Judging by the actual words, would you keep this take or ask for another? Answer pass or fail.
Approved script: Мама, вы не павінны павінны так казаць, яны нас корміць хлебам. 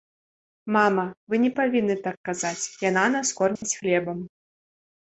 fail